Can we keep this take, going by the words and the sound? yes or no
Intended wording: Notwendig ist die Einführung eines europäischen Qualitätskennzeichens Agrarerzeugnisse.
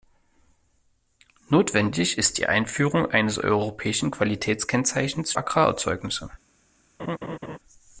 no